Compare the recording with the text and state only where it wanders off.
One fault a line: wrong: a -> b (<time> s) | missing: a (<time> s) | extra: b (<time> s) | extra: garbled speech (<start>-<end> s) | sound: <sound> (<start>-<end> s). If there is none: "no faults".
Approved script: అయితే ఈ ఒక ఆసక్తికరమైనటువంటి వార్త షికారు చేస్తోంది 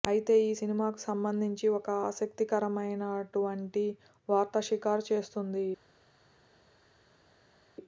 extra: సినిమాకు సంబంధించి (0.5 s)